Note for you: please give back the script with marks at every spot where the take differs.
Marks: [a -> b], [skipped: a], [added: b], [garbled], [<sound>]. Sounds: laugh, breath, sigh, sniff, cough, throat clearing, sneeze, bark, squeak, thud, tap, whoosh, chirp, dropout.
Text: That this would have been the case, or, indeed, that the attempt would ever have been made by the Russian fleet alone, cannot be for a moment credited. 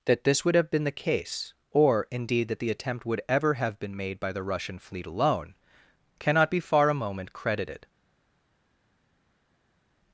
That this would have been the case, or, indeed, that the attempt would ever have been made by the Russian fleet alone, cannot be [for -> far] a moment credited.